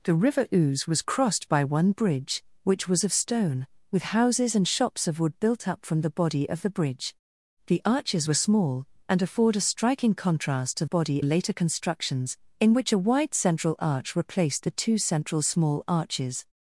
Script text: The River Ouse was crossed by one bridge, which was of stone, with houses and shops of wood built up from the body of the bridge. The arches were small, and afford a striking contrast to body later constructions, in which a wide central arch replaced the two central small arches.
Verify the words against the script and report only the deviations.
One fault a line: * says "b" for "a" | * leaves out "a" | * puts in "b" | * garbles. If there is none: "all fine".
all fine